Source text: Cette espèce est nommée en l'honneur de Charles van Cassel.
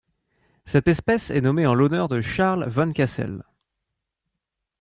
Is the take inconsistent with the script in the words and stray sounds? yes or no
no